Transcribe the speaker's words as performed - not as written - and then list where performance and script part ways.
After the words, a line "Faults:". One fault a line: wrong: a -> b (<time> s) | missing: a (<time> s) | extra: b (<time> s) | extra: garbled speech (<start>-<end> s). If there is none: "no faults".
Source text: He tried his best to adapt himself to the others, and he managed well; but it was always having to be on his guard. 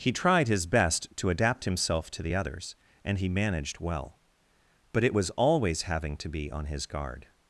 He tried his best to adapt himself to the others, and he managed well; but it was always having to be on his guard.
Faults:
no faults